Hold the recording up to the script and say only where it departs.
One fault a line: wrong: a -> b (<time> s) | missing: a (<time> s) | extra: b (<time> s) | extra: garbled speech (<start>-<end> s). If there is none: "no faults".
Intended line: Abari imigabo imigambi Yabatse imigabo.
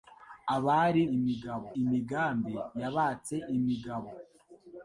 no faults